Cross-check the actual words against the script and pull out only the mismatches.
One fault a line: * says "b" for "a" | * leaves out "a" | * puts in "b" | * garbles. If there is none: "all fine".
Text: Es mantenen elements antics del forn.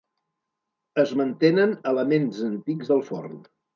all fine